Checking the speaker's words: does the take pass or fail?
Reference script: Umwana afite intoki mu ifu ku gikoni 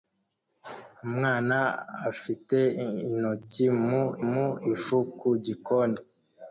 fail